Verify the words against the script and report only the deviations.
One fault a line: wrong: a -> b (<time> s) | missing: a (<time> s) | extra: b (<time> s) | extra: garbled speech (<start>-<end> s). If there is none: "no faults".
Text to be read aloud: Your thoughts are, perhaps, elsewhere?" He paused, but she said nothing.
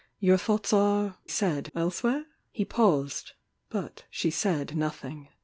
wrong: perhaps -> said (1.3 s)